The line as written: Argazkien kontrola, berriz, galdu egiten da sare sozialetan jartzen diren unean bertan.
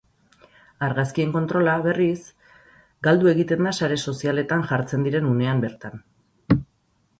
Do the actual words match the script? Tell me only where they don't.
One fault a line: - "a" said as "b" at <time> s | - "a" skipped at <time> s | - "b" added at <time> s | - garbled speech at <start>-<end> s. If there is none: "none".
none